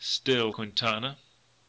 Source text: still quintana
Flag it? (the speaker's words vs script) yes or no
no